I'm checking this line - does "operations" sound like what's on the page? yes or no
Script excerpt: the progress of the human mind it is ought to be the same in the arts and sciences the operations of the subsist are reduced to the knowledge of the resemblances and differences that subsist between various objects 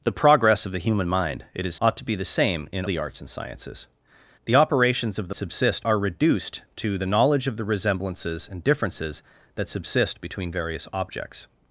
yes